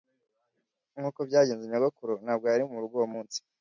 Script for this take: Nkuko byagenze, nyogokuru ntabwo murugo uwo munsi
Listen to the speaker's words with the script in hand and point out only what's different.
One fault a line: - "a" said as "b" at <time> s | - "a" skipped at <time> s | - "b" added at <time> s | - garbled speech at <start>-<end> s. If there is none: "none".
- "yari" added at 2.5 s